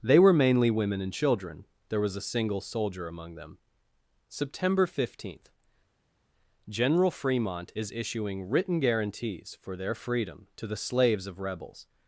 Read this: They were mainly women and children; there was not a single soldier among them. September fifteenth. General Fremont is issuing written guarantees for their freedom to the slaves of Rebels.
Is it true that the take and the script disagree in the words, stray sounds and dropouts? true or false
true